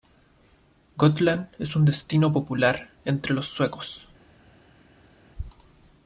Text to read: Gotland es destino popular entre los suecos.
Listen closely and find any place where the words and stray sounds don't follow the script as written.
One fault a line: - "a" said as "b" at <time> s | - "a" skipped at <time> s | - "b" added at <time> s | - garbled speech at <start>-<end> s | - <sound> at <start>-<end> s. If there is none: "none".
- "un" added at 1.8 s